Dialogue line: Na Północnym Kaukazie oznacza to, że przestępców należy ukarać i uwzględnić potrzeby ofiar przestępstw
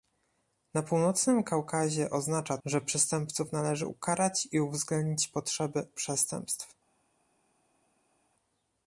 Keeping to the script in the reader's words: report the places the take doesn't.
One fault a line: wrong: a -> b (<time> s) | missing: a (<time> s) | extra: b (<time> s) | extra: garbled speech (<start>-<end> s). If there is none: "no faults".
missing: to (2.6 s)
missing: ofiar (5.9 s)